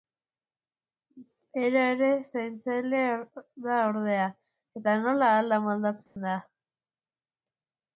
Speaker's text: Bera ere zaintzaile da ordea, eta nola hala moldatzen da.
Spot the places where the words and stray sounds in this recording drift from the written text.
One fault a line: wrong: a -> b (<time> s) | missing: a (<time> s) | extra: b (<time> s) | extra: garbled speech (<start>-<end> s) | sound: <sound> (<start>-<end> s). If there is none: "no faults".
sound: dropout (6.1-6.2 s)